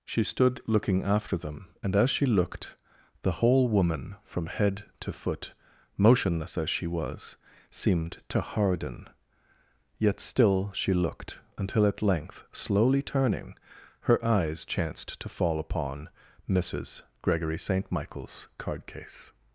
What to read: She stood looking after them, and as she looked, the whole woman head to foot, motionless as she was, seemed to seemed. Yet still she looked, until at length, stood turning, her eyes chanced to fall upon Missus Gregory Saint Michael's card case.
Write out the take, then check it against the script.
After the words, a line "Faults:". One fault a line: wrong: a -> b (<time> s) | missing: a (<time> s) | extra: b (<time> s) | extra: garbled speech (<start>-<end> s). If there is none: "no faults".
She stood looking after them, and as she looked, the whole woman from head to foot, motionless as she was, seemed to harden. Yet still she looked, until at length, slowly turning, her eyes chanced to fall upon Missus Gregory Saint Michael's card case.
Faults:
extra: from (4.2 s)
wrong: seemed -> harden (8.4 s)
wrong: stood -> slowly (12.5 s)